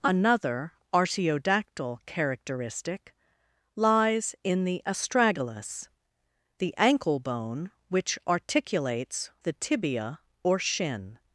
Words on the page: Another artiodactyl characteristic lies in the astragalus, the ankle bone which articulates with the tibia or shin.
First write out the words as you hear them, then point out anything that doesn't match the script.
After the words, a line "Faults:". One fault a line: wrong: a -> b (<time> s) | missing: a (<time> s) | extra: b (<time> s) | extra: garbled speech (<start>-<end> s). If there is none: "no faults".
Another artiodactyl characteristic lies in the astragalus, the ankle bone which articulates the tibia or shin.
Faults:
missing: with (9.3 s)